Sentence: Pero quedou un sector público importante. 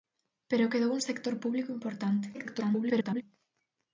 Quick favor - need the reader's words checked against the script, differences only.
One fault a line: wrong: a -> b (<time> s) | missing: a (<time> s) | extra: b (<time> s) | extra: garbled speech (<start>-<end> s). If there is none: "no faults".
extra: garbled speech (2.3-3.2 s)